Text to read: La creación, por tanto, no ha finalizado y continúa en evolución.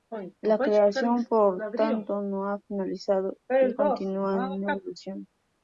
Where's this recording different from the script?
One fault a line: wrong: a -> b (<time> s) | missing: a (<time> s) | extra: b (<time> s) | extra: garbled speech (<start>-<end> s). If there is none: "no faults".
no faults